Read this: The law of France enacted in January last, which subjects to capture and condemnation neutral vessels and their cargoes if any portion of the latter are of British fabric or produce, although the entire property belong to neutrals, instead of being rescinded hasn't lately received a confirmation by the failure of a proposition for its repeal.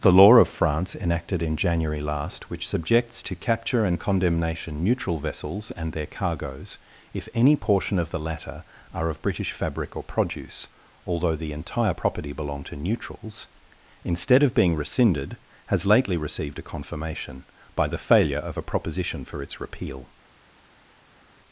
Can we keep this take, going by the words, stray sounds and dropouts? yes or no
no